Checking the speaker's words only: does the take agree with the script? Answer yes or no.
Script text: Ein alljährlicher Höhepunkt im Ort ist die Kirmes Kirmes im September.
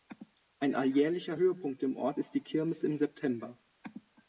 no